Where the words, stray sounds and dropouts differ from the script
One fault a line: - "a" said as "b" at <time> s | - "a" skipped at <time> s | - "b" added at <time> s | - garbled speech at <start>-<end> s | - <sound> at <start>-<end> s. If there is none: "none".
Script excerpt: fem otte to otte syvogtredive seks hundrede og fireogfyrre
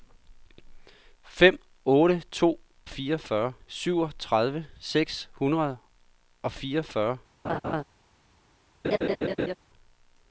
- "otte" said as "fireogfyrre" at 2.9 s
- laugh at 7.4-7.8 s
- laugh at 8.8-9.6 s